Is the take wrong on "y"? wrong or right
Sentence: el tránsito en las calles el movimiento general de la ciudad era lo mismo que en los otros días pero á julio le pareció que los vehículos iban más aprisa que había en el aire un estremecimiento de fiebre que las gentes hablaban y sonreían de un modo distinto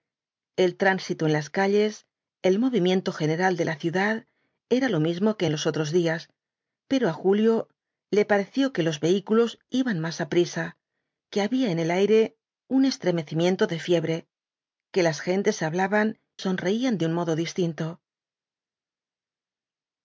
wrong